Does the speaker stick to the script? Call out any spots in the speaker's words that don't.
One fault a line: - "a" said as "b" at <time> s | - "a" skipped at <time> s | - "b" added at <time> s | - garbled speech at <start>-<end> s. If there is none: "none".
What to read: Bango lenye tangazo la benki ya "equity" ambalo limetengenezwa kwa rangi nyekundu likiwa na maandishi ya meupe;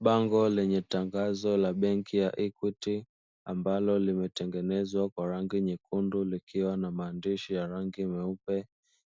- "rangi" added at 7.7 s